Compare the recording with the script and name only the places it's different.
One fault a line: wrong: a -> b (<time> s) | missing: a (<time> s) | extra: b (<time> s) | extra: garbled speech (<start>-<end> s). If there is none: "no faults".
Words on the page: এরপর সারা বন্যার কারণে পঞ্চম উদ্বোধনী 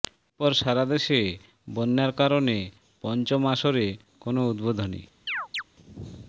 extra: দেশে (0.8 s)
extra: আসরে কোনো (3.5 s)